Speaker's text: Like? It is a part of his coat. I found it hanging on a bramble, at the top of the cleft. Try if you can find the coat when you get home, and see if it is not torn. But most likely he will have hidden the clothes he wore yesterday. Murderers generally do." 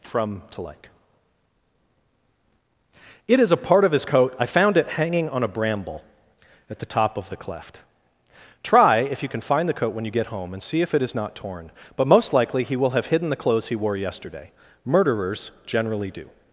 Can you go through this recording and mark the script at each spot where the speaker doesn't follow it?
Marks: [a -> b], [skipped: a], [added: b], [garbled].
[added: from to] Like? It is a part of his coat. I found it hanging on a bramble, at the top of the cleft. Try if you can find the coat when you get home, and see if it is not torn. But most likely he will have hidden the clothes he wore yesterday. Murderers generally do."